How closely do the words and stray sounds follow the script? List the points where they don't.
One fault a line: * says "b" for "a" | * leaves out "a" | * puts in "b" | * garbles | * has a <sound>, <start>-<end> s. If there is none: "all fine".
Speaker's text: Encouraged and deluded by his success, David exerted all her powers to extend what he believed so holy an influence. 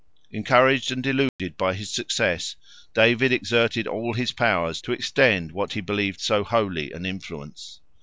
* has a dropout, 1.3-1.4 s
* says "his" for "her"